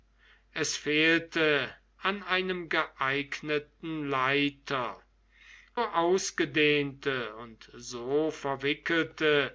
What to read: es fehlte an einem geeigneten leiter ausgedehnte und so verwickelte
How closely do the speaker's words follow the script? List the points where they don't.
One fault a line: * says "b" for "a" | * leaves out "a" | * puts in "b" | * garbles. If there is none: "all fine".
all fine